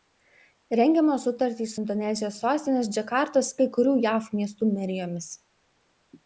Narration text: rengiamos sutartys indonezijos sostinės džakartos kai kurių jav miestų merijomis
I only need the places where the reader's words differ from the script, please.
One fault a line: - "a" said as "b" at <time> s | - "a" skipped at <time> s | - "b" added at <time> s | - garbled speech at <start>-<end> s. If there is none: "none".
none